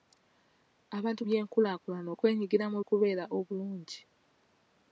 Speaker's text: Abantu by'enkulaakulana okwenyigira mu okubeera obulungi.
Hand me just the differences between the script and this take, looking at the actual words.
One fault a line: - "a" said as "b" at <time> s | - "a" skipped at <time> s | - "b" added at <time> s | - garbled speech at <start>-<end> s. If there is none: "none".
none